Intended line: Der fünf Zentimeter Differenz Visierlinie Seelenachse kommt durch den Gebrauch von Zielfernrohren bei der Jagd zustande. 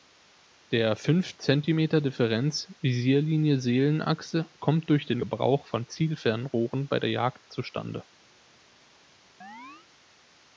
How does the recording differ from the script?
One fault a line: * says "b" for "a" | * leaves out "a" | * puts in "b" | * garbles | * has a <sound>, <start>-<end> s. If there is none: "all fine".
* has a chirp, 9.4-9.9 s